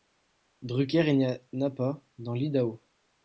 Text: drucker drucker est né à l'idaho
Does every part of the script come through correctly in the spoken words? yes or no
no